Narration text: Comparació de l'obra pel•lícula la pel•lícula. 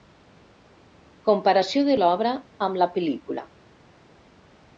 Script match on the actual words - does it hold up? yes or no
no